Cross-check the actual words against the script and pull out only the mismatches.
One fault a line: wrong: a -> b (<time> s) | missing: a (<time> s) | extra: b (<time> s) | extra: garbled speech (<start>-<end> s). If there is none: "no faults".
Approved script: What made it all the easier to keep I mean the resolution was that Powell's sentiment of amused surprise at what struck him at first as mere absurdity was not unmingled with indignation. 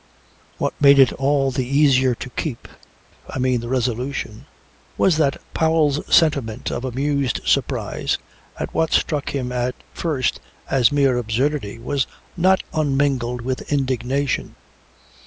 no faults